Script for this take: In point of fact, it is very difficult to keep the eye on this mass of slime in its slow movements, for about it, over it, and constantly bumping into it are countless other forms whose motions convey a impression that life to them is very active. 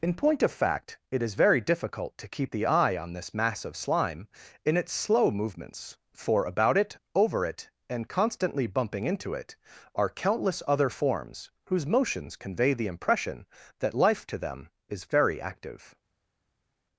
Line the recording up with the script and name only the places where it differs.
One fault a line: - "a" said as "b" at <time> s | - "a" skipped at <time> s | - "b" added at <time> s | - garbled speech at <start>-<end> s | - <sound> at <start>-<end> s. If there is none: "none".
- "a" said as "the" at 12.8 s